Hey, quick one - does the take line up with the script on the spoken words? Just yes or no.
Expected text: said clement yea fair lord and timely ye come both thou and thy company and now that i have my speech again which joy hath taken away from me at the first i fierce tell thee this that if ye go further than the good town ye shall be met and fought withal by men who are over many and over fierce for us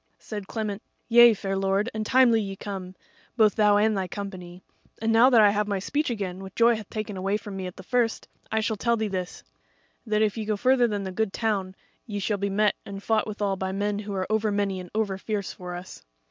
no